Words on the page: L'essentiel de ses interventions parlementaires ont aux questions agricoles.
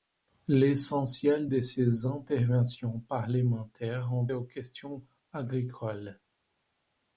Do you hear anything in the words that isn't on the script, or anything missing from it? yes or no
no